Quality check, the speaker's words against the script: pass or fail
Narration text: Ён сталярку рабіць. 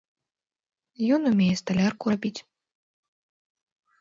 fail